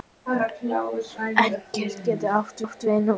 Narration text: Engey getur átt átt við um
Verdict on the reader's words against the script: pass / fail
pass